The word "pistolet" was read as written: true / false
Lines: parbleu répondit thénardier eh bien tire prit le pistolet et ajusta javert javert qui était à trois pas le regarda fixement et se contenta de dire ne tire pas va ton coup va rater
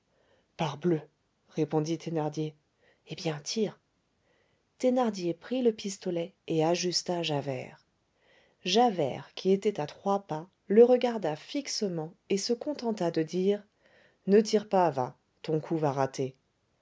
true